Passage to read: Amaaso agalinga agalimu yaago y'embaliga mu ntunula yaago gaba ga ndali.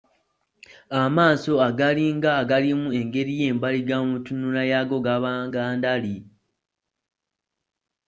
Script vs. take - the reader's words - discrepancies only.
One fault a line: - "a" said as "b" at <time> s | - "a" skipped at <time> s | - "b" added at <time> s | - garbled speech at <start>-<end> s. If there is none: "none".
- "yaago" said as "engeri" at 3.0 s